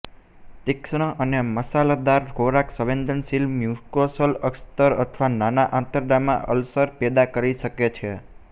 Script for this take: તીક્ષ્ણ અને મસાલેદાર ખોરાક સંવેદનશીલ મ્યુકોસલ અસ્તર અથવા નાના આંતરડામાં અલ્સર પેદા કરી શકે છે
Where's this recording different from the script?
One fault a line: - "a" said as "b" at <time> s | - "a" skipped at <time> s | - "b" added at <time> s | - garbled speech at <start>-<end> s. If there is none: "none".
none